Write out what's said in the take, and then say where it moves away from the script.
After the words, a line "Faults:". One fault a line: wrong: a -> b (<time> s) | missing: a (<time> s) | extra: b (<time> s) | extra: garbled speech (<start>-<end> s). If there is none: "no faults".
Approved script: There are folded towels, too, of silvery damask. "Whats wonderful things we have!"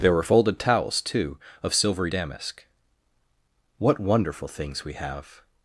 There were folded towels, too, of silvery damask. "What wonderful things we have!"
Faults:
wrong: are -> were (0.1 s)
wrong: Whats -> What (3.8 s)